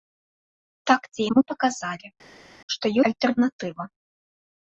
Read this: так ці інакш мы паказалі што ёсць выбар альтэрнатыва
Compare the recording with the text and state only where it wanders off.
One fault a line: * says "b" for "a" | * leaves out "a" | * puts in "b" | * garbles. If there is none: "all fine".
* leaves out "інакш"
* leaves out "ёсць выбар"